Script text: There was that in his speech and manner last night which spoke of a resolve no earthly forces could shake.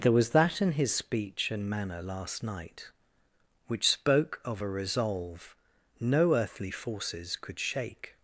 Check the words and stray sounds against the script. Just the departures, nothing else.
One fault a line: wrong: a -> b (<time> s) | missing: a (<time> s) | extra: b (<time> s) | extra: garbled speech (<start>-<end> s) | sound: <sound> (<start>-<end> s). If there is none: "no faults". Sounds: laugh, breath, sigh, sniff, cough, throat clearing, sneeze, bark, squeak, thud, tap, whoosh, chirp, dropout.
no faults